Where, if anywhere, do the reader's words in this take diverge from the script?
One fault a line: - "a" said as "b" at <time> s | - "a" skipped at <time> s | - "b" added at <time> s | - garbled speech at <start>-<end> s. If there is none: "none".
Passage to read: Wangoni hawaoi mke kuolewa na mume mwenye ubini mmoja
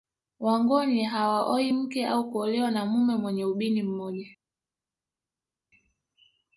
- "au" added at 2.1 s